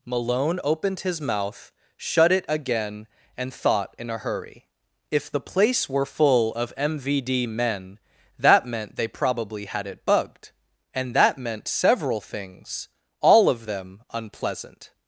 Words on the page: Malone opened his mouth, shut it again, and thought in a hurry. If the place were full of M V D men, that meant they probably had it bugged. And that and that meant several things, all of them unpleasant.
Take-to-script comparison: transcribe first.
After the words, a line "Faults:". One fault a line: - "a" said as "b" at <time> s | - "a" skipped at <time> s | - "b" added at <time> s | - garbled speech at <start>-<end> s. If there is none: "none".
Malone opened his mouth, shut it again, and thought in a hurry. If the place were full of M V D men, that meant they probably had it bugged. And that meant several things, all of them unpleasant.
Faults:
- "and that" skipped at 11.4 s